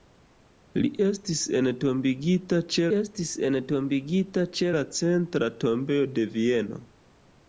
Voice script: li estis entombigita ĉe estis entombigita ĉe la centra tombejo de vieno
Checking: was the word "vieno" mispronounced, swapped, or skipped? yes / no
no